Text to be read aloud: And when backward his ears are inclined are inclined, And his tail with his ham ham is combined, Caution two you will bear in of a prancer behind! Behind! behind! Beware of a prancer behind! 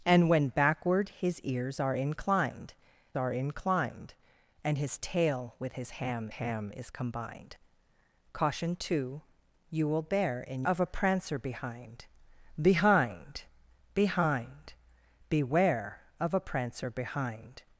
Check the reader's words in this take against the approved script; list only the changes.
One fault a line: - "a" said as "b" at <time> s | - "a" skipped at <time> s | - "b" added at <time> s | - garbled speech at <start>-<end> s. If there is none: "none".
none